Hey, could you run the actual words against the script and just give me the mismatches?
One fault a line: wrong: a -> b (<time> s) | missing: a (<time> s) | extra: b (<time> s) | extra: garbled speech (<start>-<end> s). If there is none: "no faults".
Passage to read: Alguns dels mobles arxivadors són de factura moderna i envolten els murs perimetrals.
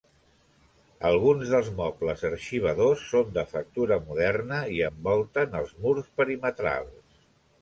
no faults